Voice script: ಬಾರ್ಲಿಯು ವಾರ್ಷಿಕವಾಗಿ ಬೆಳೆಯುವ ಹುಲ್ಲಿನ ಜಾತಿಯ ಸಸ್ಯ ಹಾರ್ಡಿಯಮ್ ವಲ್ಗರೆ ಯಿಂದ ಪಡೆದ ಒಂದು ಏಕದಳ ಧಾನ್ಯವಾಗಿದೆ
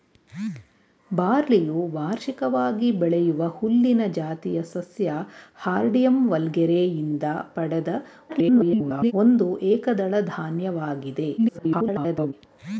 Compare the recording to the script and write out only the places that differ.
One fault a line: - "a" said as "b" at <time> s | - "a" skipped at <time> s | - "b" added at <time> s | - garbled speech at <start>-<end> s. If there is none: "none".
- garbled speech at 8.3-9.1 s
- garbled speech at 11.4-12.3 s